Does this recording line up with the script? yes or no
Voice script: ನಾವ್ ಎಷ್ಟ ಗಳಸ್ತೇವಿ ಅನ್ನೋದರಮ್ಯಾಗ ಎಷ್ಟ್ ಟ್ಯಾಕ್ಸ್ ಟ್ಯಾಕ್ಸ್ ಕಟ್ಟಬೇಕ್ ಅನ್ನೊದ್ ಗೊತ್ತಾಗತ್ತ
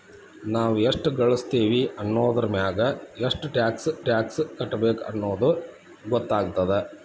yes